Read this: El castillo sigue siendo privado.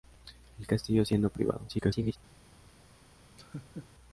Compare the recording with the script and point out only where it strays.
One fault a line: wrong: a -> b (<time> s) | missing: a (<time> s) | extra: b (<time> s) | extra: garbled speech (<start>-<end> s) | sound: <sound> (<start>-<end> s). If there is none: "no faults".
missing: sigue (1.1 s)
extra: garbled speech (1.7-2.2 s)
sound: laugh (3.4-3.9 s)